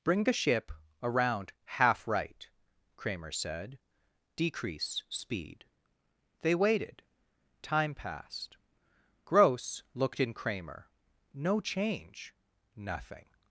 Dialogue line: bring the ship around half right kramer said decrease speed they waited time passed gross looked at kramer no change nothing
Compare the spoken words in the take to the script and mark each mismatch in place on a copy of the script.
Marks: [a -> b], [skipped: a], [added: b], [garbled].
bring the ship around half right kramer said decrease speed they waited time passed gross looked [at -> in] kramer no change nothing